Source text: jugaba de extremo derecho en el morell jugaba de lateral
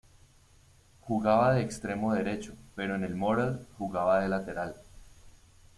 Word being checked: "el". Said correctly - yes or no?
yes